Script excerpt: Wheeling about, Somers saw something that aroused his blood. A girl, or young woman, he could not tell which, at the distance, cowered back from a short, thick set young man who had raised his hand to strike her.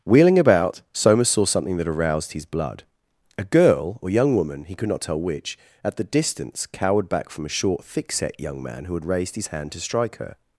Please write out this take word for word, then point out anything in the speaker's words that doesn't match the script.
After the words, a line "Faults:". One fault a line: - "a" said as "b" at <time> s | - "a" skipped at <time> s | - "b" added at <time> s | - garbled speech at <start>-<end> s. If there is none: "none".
Wheeling about, Somers saw something that aroused his blood. A girl, or young woman, he could not tell which, at the distance, cowered back from a short, thick set young man who had raised his hand to strike her.
Faults:
none